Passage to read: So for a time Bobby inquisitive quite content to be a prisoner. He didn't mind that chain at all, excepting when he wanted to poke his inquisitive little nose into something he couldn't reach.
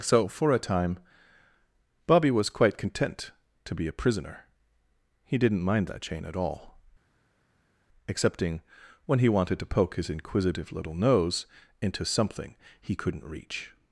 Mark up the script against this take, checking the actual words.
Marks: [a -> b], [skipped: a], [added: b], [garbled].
So for a time Bobby [inquisitive -> was] quite content to be a prisoner. He didn't mind that chain at all, excepting when he wanted to poke his inquisitive little nose into something he couldn't reach.